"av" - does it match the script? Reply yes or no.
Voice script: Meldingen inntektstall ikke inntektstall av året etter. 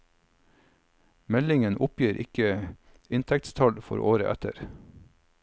no